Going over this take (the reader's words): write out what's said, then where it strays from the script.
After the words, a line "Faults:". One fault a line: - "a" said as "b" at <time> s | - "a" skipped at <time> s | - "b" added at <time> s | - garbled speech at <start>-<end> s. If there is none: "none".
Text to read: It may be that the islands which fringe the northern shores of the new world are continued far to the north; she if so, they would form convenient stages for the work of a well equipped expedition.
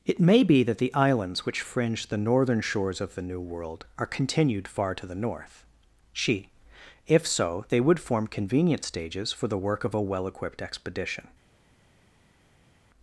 It may be that the islands which fringe the northern shores of the new world are continued far to the north; she if so, they would form convenient stages for the work of a well equipped expedition.
Faults:
none